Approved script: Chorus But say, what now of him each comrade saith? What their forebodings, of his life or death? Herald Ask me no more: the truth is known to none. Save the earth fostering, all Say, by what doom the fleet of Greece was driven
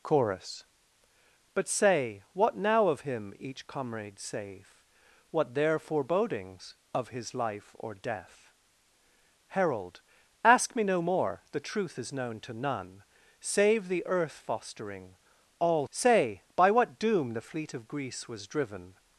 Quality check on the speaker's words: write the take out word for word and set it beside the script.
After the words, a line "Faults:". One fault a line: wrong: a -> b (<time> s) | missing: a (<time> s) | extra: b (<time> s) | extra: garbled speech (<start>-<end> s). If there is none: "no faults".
Chorus But say, what now of him each comrade saith? What their forebodings, of his life or death? Herald Ask me no more: the truth is known to none. Save the earth fostering, all Say, by what doom the fleet of Greece was driven
Faults:
no faults